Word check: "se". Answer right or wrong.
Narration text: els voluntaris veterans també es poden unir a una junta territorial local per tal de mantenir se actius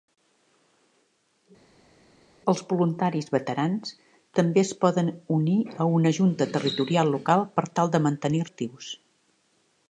wrong